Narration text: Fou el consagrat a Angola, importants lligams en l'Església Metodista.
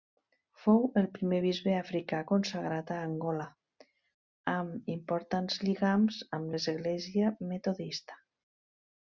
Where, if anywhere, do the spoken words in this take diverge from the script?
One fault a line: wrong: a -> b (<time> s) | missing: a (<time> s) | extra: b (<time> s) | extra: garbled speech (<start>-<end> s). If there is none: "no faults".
extra: primer bisbe africà (1.2 s)
extra: amb (4.5 s)
wrong: en -> amb (6.4 s)